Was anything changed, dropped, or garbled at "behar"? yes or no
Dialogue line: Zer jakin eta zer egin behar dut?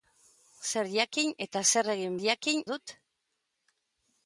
yes